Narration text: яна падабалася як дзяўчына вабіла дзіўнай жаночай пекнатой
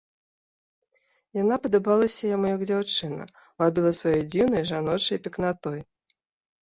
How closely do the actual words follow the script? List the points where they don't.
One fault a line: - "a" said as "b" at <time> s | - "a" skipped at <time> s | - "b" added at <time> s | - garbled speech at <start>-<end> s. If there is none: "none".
- "яму" added at 2.4 s
- "сваёй" added at 4.0 s